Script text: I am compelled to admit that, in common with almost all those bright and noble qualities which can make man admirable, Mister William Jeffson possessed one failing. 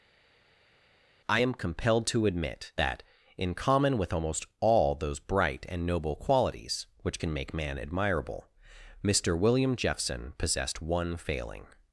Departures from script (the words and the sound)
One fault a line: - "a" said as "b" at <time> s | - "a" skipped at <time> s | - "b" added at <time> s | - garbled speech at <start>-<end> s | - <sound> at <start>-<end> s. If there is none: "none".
none